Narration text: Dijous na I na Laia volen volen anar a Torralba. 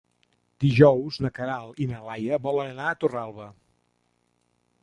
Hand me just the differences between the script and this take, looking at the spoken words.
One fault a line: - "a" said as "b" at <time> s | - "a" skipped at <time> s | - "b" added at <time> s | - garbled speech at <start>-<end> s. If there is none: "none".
- "Queralt" added at 1.4 s
- "volen" skipped at 2.7 s